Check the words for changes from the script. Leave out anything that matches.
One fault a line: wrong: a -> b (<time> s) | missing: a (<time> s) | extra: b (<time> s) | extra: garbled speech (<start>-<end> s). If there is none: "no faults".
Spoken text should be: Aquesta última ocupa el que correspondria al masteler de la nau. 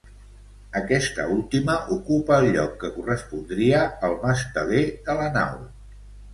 extra: lloc (2.6 s)